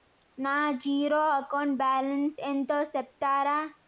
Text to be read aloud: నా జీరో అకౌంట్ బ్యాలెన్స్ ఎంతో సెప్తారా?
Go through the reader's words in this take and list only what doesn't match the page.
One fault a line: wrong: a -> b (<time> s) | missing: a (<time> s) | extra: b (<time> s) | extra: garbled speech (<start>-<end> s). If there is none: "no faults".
no faults